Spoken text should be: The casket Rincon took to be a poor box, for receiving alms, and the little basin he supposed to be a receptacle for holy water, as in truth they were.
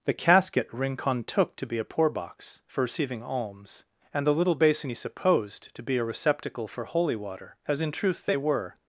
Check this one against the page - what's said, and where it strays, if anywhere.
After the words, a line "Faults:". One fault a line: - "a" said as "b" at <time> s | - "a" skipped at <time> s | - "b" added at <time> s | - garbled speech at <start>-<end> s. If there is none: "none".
The casket Rincon took to be a poor box, for receiving alms, and the little basin he supposed to be a receptacle for holy water, as in truth they were.
Faults:
none